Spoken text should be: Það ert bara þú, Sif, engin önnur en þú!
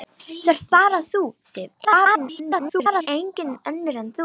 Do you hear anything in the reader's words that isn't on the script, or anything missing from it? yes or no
yes